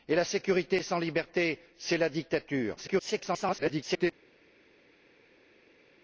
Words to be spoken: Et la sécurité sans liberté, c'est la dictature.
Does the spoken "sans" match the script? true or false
true